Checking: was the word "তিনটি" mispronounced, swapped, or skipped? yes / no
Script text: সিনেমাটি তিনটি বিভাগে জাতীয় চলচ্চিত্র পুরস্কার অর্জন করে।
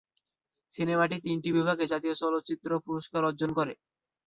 no